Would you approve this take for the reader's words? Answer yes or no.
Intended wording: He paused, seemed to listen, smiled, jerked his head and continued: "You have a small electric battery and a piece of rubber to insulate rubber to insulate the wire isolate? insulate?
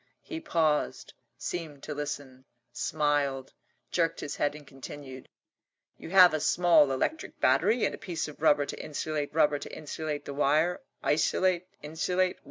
yes